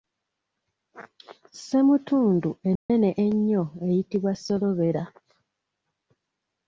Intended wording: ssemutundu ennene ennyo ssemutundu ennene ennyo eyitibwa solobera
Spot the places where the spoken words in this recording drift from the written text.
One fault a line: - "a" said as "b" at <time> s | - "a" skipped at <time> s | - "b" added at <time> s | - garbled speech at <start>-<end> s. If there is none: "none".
- "ssemutundu ennene ennyo" skipped at 3.6 s